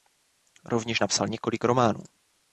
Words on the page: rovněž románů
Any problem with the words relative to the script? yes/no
yes